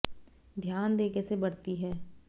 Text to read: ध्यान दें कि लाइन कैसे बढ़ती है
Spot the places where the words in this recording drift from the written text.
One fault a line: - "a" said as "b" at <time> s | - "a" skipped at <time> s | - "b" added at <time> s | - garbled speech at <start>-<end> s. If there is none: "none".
- "कि लाइन" skipped at 1.1 s